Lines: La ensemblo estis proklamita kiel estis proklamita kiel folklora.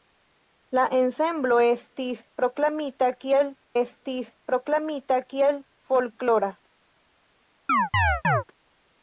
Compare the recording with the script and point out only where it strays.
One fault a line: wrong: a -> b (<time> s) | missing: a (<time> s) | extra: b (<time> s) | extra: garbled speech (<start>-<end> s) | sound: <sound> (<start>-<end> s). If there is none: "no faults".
sound: chirp (7.7-8.4 s)